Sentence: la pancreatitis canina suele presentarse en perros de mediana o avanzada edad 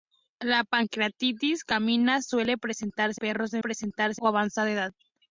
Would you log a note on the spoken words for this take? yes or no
yes